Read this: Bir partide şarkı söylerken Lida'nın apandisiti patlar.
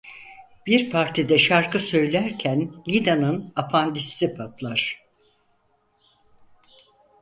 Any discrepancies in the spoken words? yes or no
no